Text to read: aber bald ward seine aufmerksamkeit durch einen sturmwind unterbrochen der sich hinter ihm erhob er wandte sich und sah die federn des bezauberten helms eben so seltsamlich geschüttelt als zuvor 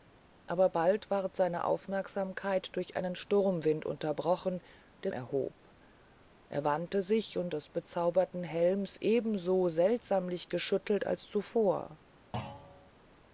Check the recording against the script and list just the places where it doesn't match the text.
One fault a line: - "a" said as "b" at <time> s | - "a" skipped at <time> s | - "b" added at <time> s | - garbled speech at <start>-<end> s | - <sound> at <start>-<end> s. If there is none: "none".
- "sich hinter ihm" skipped at 5.1 s
- "sah die federn" skipped at 7.5 s
- thud at 12.3-12.9 s